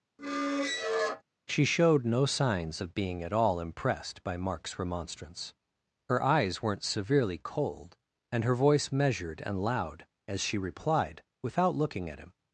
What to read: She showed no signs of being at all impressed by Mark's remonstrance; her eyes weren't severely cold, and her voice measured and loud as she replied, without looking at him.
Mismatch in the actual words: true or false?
false